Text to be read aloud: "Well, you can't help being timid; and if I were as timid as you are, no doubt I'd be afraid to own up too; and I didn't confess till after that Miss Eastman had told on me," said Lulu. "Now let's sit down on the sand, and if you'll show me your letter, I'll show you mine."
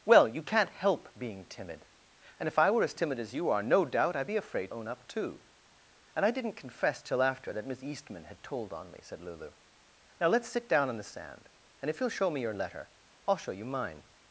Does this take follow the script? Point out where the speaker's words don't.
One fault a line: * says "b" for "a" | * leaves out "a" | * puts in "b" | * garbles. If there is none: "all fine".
* leaves out "to"